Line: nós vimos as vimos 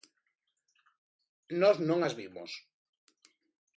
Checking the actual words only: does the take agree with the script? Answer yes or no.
no